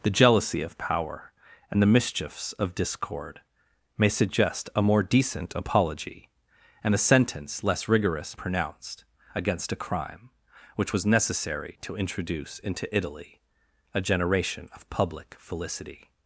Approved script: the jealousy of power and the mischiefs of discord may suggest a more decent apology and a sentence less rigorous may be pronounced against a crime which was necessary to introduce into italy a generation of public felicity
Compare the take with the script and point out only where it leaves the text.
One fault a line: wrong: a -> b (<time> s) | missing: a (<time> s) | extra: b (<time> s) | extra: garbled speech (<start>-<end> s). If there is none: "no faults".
missing: may be (8.3 s)